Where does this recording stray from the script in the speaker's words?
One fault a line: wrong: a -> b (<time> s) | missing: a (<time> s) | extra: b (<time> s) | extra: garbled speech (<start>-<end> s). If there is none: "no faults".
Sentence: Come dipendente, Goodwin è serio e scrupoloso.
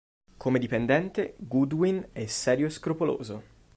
no faults